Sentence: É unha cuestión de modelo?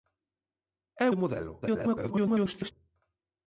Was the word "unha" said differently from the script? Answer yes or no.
yes